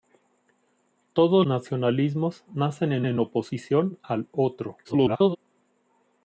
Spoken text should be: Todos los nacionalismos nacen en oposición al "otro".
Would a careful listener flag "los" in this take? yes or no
yes